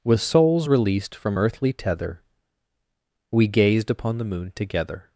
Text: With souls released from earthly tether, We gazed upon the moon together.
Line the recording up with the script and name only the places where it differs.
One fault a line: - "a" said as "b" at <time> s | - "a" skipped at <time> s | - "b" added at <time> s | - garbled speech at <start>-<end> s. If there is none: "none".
none